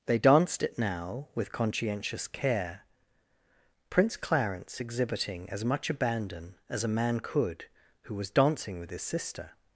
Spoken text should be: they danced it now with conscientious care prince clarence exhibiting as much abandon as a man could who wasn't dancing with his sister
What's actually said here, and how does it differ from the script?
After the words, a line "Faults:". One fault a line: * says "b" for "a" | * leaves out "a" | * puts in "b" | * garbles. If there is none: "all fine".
they danced it now with conscientious care prince clarence exhibiting as much abandon as a man could who was dancing with his sister
Faults:
* says "was" for "wasn't"